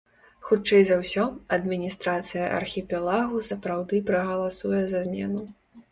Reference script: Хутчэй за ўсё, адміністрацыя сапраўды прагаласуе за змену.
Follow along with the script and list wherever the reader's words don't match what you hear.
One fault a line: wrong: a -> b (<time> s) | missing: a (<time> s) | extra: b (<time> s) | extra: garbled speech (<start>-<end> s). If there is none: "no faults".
extra: архіпелагу (2.6 s)